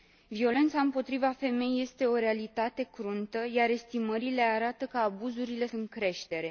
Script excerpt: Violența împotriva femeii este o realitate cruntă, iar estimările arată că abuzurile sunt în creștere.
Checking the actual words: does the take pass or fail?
fail